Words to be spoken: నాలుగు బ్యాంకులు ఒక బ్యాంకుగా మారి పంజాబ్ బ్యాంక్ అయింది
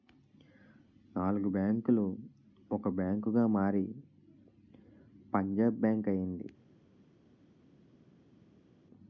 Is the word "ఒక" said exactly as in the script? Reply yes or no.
yes